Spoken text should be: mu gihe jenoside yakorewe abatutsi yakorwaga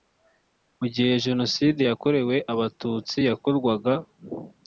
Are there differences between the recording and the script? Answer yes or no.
no